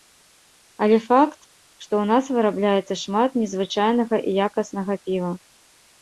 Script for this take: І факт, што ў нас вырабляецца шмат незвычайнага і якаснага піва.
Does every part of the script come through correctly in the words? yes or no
no